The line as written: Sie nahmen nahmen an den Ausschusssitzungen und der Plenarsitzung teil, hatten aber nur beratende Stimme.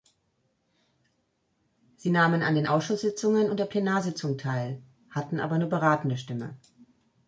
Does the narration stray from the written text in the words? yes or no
yes